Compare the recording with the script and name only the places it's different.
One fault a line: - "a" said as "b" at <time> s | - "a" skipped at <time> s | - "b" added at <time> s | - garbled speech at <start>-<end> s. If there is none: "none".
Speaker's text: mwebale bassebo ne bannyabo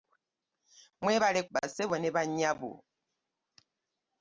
none